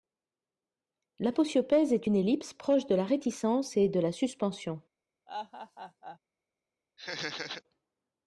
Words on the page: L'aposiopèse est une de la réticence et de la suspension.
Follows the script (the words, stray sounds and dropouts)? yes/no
no